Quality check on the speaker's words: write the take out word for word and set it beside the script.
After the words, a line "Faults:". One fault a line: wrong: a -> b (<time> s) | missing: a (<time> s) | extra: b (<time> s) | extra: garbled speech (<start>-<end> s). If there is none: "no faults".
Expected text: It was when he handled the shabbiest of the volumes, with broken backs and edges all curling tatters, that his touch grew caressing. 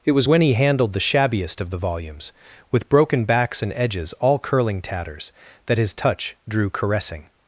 It was when he handled the shabbiest of the volumes, with broken backs and edges all curling tatters, that his touch drew caressing.
Faults:
wrong: grew -> drew (6.5 s)